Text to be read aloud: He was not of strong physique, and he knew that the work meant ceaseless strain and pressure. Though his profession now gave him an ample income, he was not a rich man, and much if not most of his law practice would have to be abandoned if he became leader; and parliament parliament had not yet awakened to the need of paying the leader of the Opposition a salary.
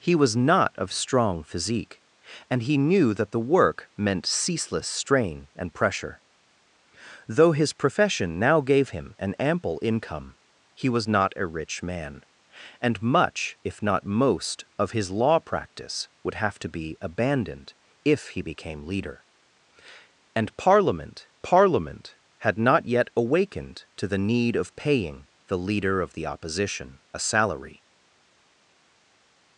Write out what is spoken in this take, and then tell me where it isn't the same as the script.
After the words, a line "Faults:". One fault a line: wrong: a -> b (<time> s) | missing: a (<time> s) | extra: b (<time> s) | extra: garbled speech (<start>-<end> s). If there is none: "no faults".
He was not of strong physique, and he knew that the work meant ceaseless strain and pressure. Though his profession now gave him an ample income, he was not a rich man, and much if not most of his law practice would have to be abandoned if he became leader; and parliament parliament had not yet awakened to the need of paying the leader of the Opposition a salary.
Faults:
no faults